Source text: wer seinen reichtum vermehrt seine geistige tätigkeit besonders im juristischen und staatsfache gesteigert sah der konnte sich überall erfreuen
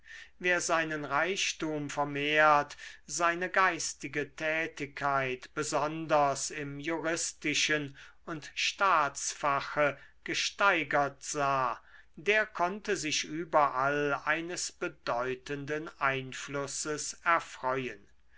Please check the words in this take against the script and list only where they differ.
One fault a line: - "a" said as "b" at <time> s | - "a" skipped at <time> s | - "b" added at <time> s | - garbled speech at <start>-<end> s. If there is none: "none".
- "eines bedeutenden einflusses" added at 14.2 s